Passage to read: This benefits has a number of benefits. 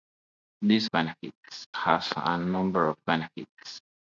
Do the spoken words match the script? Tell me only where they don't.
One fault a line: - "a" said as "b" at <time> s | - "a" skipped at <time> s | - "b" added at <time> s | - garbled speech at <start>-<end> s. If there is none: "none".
none